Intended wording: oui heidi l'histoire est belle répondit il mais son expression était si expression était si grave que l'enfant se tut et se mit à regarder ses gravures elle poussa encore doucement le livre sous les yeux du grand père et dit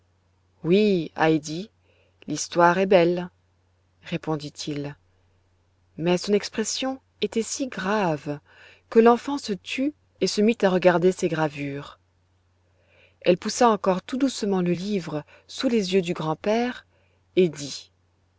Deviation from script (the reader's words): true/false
true